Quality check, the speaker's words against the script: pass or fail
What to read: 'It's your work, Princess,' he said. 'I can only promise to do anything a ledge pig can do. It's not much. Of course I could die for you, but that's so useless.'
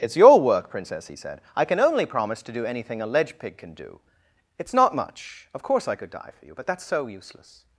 pass